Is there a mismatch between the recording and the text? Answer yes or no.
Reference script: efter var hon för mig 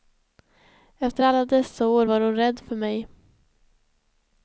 yes